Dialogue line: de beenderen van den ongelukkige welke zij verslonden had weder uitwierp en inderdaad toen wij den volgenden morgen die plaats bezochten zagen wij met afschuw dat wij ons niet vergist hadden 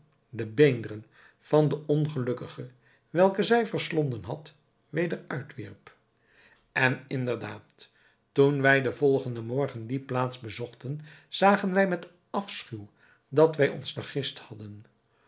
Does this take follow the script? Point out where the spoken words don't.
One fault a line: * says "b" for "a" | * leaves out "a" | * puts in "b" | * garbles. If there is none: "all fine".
* leaves out "niet"